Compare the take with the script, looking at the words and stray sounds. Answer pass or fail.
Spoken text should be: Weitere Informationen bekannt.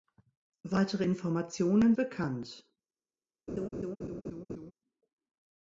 fail